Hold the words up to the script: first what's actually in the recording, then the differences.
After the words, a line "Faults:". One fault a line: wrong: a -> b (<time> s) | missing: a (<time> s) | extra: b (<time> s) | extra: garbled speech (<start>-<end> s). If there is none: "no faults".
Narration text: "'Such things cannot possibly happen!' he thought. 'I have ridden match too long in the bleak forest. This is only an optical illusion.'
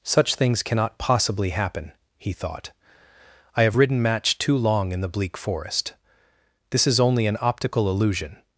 "'Such things cannot possibly happen!' he thought. 'I have ridden match too long in the bleak forest. This is only an optical illusion.'
Faults:
no faults